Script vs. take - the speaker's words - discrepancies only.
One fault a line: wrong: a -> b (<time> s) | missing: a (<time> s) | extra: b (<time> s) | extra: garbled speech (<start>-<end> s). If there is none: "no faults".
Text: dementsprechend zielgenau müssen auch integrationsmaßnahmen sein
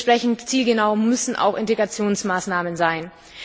no faults